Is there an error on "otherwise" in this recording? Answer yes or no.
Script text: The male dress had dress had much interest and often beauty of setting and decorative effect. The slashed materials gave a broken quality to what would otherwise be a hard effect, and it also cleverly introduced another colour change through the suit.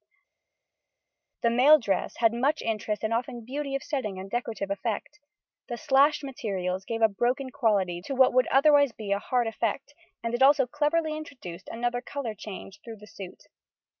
no